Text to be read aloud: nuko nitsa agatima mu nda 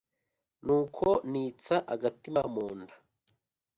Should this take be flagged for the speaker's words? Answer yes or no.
no